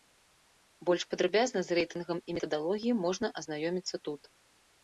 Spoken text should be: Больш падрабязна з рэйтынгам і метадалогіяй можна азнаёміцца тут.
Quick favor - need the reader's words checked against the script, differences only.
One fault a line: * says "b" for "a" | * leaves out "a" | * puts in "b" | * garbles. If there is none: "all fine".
all fine